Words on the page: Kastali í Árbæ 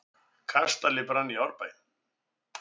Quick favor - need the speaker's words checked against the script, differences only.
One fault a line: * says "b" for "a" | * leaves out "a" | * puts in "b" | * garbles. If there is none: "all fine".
* puts in "brann"